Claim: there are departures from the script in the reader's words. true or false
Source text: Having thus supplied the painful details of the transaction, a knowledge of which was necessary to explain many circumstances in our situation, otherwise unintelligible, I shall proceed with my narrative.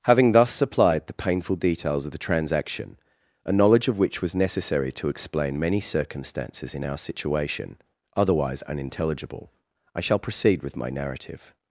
false